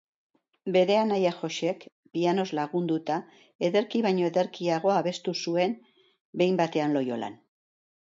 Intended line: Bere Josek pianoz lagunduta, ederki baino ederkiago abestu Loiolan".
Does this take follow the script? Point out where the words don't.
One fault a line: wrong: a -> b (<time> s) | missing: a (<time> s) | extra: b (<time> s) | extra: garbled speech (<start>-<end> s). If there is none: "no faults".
extra: anaia (1.0 s)
extra: zuen Behin batean (5.5 s)